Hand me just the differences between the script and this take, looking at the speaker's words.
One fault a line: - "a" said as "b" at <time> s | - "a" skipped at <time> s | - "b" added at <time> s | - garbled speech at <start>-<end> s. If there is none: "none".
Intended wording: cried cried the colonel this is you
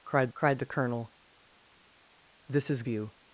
none